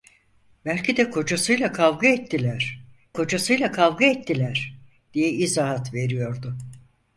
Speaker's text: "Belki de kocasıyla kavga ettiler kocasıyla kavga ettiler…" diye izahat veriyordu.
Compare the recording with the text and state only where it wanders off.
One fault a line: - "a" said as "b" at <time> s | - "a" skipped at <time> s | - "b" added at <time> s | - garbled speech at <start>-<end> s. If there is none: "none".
none